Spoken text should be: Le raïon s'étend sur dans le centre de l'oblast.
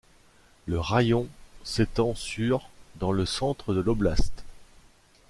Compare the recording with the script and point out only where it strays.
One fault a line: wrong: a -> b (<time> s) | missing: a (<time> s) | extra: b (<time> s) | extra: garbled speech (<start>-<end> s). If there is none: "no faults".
no faults